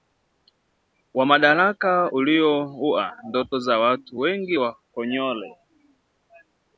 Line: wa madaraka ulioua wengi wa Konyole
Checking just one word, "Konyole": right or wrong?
right